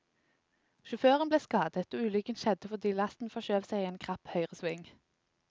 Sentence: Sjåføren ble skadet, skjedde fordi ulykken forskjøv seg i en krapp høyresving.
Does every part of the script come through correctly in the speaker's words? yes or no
no